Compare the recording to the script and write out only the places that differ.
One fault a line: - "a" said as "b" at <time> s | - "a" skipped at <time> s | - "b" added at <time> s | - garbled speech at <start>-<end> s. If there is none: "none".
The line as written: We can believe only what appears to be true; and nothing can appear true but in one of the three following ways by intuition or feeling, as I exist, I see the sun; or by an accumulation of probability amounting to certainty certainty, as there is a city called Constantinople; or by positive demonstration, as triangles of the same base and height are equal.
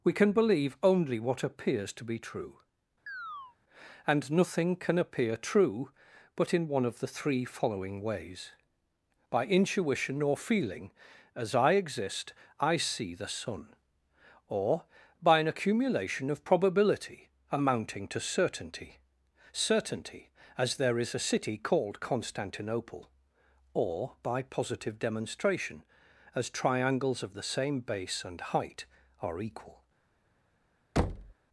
none